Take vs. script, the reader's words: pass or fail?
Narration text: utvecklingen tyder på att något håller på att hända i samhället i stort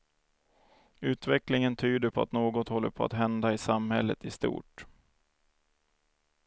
pass